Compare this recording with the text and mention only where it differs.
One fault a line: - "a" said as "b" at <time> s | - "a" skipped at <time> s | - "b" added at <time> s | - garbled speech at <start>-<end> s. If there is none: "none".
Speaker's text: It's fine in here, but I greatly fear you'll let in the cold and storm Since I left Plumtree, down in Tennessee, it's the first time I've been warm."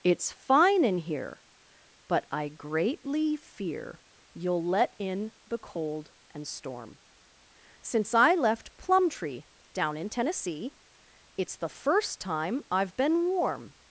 none